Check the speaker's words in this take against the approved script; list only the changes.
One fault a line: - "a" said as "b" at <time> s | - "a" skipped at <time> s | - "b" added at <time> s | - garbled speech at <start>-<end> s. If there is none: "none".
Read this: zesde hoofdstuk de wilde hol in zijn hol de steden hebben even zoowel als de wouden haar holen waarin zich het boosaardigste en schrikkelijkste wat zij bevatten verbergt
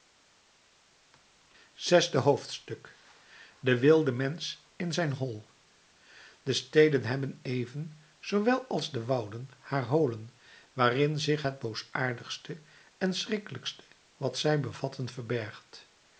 - "hol" said as "mensch" at 4.1 s